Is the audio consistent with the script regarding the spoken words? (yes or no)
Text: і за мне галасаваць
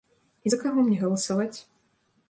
no